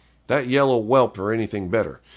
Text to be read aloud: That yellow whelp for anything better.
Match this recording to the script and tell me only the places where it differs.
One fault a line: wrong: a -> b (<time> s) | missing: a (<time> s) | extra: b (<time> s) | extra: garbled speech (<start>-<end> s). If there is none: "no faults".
no faults